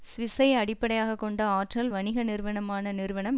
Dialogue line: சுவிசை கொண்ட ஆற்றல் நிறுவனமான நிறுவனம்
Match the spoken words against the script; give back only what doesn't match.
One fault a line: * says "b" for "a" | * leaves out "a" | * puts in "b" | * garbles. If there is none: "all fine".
* puts in "அடிப்படையாக"
* puts in "வணிக"